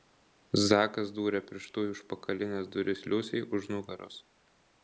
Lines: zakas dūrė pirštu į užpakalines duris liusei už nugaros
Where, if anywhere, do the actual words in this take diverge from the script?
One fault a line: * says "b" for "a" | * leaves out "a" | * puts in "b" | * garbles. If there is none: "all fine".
all fine